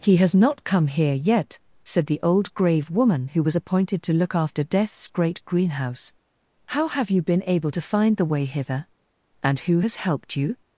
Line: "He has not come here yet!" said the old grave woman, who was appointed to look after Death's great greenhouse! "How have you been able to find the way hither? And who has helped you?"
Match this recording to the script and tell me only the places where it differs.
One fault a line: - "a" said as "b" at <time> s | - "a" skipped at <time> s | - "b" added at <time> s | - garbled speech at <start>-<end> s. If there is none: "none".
none